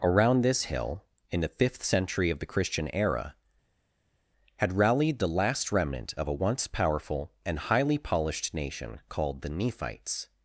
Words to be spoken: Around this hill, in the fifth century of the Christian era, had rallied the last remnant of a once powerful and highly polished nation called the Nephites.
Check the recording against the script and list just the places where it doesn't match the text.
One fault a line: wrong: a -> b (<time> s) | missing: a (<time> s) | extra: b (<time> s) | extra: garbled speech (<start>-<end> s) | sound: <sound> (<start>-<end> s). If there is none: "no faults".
no faults